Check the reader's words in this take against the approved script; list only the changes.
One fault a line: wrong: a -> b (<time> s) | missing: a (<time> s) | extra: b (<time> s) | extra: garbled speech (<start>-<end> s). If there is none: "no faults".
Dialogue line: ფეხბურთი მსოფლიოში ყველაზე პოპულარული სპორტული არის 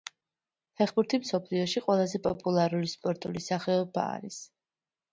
extra: სახეობა (3.5 s)